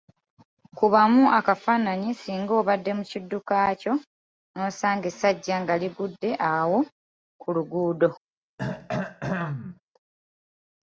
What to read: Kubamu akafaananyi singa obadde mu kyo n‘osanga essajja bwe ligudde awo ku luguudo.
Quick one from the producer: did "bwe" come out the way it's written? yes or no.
no